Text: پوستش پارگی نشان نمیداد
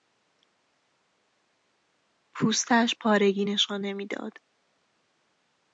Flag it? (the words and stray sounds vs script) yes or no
no